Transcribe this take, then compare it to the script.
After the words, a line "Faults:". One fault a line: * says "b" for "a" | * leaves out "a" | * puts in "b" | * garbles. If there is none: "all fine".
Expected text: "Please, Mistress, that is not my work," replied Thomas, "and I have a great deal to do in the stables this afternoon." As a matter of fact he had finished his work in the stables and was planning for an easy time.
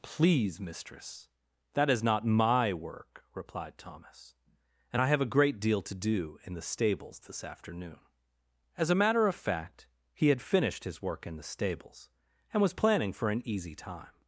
"Please, Mistress, that is not my work," replied Thomas, "and I have a great deal to do in the stables this afternoon." As a matter of fact he had finished his work in the stables and was planning for an easy time.
Faults:
all fine